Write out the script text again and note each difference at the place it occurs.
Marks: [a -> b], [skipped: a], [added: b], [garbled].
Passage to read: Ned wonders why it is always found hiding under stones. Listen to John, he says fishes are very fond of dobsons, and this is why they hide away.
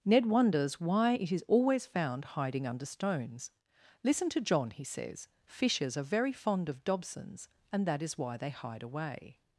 Ned wonders why it is always found hiding under stones. Listen to John, he says fishes are very fond of dobsons, and [this -> that] is why they hide away.